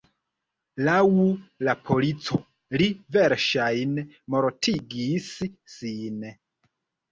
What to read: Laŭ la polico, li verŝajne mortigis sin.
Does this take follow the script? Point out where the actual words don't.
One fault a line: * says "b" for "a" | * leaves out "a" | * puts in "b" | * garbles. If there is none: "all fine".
all fine